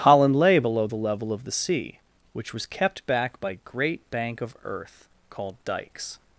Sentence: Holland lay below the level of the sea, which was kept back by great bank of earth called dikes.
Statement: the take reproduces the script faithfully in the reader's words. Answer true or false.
true